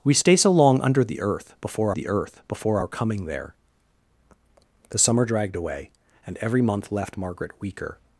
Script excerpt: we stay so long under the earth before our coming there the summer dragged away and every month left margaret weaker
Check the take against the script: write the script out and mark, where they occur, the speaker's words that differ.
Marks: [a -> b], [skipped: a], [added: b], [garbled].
we stay so long under the earth before [added: the earth before] our coming there the summer dragged away and every month left margaret weaker